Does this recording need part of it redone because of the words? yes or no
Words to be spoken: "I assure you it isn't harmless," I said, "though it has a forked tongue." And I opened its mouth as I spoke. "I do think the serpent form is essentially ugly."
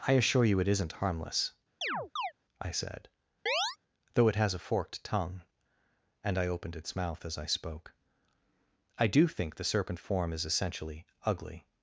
no